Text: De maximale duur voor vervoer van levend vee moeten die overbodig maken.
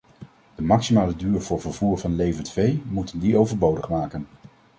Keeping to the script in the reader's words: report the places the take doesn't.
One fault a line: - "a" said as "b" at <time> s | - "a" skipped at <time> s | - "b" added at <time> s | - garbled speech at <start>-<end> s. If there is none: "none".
none